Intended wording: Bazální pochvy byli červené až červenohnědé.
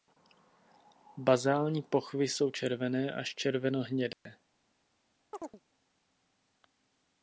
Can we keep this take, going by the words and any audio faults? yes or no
no